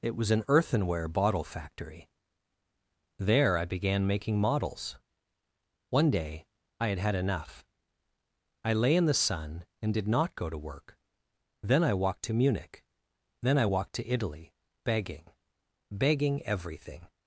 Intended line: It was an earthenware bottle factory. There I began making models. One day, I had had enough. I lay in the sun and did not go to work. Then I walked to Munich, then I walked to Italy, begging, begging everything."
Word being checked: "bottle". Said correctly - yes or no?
yes